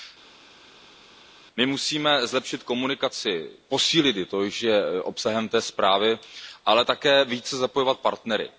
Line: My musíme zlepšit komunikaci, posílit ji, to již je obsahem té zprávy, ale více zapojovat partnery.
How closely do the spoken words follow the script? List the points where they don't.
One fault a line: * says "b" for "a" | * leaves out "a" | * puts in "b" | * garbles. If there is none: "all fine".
* puts in "také"